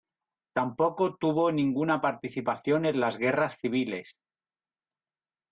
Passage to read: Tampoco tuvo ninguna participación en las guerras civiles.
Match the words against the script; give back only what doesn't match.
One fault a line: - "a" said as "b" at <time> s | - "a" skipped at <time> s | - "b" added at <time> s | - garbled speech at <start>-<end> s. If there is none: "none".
none